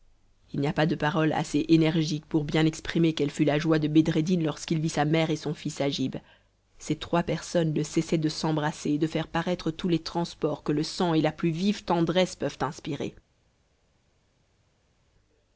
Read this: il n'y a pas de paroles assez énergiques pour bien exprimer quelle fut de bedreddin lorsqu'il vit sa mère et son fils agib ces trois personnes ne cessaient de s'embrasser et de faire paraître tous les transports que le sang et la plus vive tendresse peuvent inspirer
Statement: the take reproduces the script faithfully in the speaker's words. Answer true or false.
false